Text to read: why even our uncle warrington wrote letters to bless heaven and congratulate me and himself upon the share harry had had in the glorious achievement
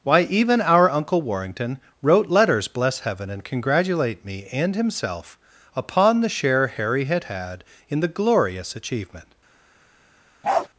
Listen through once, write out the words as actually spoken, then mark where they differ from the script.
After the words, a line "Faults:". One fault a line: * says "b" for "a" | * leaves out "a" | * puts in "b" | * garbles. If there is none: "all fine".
why even our uncle warrington wrote letters bless heaven and congratulate me and himself upon the share harry had had in the glorious achievement
Faults:
* leaves out "to"